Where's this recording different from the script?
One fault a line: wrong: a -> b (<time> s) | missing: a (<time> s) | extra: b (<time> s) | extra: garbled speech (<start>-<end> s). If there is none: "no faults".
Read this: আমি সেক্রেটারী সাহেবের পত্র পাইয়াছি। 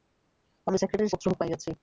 missing: সাহেবের (1.1 s)